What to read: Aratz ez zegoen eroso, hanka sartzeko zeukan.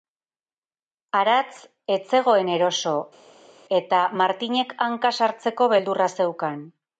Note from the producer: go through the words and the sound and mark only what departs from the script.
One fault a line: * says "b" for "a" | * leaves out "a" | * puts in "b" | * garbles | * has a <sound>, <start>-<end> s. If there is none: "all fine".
* puts in "eta Martinek"
* puts in "beldurra"